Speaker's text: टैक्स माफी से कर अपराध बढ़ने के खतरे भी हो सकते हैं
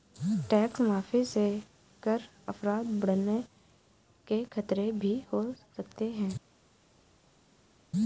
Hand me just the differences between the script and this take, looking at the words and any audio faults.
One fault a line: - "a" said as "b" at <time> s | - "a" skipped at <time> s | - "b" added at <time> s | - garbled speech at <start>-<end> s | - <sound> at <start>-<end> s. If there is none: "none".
none